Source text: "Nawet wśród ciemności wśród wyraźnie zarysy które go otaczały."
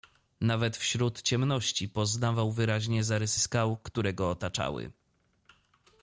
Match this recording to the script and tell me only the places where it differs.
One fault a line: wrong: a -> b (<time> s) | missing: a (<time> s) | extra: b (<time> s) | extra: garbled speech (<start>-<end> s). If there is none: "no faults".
wrong: wśród -> poznawał (1.9 s)
extra: skał (3.4 s)